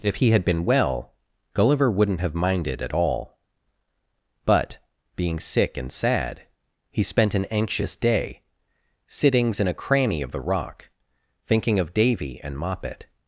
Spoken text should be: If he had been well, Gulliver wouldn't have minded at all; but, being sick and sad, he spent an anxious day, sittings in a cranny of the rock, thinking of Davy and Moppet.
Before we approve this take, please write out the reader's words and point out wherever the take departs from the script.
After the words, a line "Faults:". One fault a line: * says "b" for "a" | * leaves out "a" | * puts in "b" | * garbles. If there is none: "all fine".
If he had been well, Gulliver wouldn't have minded at all; but, being sick and sad, he spent an anxious day, sittings in a cranny of the rock, thinking of Davy and Moppet.
Faults:
all fine